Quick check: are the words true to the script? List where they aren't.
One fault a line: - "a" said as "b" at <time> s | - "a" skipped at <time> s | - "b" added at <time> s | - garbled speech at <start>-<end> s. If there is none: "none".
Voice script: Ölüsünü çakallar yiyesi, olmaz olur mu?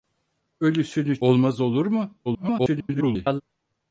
- "çakallar yiyesi" skipped at 1.2 s
- garbled speech at 2.3-3.4 s